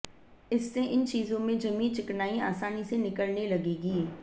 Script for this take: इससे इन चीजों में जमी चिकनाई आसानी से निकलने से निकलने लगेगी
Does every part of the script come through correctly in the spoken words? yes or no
no